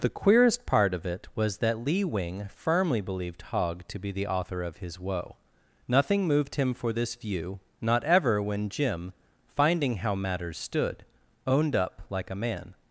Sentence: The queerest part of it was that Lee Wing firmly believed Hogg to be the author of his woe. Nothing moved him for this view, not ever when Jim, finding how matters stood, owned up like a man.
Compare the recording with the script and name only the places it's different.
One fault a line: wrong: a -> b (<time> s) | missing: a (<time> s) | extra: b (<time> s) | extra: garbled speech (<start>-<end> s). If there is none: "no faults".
no faults